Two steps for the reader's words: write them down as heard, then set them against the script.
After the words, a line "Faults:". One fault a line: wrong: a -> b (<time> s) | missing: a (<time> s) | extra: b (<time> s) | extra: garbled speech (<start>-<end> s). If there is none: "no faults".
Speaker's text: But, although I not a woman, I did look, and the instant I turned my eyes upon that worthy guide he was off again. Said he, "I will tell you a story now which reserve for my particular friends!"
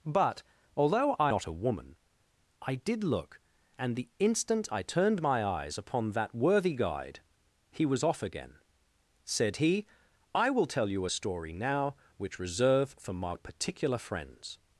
But, although I not a woman, I did look, and the instant I turned my eyes upon that worthy guide he was off again. Said he, "I will tell you a story now which reserve for my particular friends!"
Faults:
no faults